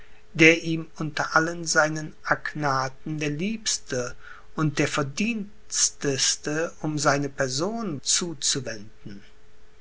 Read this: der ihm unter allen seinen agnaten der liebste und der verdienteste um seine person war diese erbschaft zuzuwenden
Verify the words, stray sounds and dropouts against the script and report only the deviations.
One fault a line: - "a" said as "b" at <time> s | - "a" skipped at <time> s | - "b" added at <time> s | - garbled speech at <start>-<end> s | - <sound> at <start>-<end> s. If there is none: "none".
- "war diese erbschaft" skipped at 8.0 s